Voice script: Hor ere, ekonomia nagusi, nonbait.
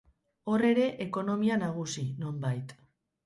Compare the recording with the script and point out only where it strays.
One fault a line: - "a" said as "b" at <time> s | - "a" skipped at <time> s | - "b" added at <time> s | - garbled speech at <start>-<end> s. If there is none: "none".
none